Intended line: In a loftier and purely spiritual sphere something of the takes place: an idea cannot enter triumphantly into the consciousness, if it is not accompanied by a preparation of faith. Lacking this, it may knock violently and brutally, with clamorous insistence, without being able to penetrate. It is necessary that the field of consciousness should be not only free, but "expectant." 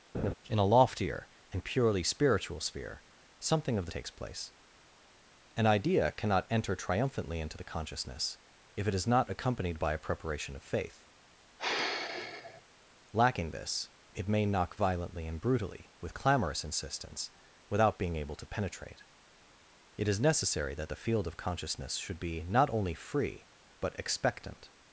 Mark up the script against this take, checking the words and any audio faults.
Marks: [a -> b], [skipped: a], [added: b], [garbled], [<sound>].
[laugh] In a loftier and purely spiritual sphere something of the takes place: an idea cannot enter triumphantly into the consciousness, if it is not accompanied by a preparation of faith. [sigh] Lacking this, it may knock violently and brutally, with clamorous insistence, without being able to penetrate. It is necessary that the field of consciousness should be not only free, but "expectant."